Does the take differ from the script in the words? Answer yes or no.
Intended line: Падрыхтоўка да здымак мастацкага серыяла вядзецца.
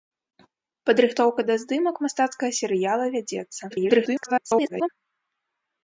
yes